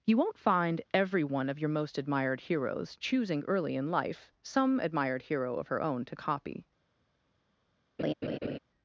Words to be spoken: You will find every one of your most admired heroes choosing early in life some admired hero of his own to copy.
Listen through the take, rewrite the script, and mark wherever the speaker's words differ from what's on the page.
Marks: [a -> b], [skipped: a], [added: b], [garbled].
You [will -> won't] find every one of your most admired heroes choosing early in life some admired hero of [his -> her] own to copy.